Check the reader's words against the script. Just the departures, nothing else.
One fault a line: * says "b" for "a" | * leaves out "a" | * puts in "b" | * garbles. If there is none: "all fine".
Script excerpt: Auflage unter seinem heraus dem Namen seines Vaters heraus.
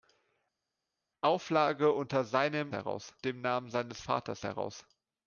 all fine